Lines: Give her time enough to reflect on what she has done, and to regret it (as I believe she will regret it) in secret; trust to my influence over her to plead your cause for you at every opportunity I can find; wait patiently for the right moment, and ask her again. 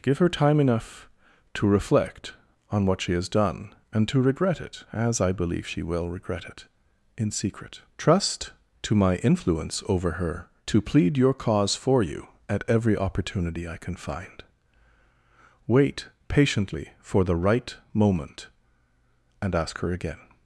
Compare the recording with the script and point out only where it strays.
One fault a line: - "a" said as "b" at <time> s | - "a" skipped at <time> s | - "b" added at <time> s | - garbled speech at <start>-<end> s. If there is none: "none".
none